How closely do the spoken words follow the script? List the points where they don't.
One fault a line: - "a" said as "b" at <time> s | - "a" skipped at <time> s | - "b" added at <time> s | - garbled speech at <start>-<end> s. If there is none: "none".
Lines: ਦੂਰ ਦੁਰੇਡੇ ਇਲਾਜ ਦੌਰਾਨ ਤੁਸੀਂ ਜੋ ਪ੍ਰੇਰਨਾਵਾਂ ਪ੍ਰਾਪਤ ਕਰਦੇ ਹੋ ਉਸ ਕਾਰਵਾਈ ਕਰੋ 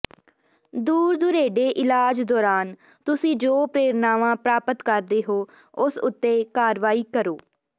- "ਉੱਤੇ" added at 6.0 s